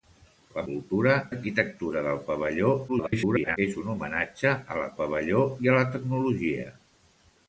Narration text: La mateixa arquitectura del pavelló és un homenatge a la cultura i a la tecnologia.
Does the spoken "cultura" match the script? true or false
false